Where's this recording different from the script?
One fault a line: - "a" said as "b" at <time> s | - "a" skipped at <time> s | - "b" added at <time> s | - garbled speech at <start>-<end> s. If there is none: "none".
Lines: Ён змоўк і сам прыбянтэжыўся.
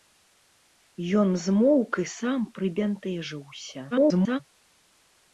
- garbled speech at 3.9-4.4 s